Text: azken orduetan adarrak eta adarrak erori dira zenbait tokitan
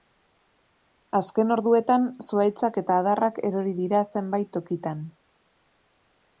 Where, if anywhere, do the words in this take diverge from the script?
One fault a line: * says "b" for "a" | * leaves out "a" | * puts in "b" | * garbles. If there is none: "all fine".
* says "zuhaitzak" for "adarrak"